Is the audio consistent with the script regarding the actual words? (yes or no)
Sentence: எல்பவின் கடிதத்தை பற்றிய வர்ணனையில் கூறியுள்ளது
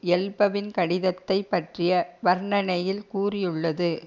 yes